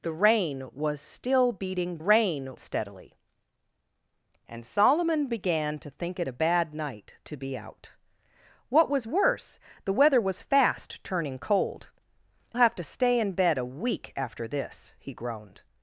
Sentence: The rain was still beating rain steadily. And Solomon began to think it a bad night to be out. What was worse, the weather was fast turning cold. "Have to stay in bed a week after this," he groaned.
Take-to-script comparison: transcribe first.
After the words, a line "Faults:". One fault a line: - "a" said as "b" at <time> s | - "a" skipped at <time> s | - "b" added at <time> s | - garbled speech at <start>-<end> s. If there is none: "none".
The rain was still beating rain steadily. And Solomon began to think it a bad night to be out. What was worse, the weather was fast turning cold. "Have to stay in bed a week after this," he groaned.
Faults:
none